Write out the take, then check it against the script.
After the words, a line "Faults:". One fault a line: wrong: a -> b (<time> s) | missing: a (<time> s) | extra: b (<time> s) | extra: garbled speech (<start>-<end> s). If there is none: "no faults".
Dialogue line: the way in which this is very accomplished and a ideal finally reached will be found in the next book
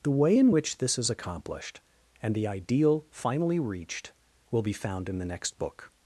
the way in which this is accomplished and the ideal finally reached will be found in the next book
Faults:
missing: very (1.1 s)
wrong: a -> the (2.3 s)